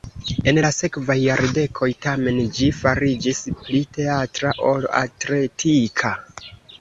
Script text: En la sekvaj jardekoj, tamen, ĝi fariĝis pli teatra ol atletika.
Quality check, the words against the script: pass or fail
pass